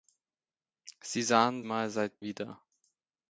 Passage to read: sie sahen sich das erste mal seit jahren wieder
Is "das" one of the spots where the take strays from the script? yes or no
yes